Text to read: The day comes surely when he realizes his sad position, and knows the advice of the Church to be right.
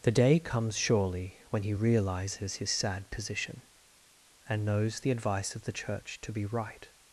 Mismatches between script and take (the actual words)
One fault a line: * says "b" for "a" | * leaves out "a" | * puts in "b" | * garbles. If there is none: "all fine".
all fine